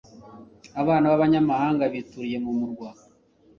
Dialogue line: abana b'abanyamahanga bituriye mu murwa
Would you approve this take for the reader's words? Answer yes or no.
yes